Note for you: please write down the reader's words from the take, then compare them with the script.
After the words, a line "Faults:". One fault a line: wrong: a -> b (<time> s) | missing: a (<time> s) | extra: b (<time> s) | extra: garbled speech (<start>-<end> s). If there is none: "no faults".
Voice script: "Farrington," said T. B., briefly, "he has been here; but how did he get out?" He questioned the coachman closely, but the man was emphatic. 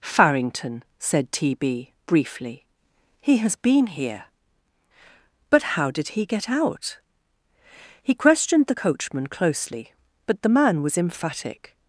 "Farrington," said T. B., briefly, "he has been here; but how did he get out?" He questioned the coachman closely, but the man was emphatic.
Faults:
no faults